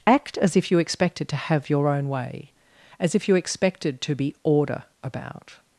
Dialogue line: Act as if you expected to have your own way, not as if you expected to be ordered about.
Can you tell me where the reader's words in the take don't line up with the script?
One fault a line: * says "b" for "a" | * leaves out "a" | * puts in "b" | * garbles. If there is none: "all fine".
* leaves out "not"
* says "order" for "ordered"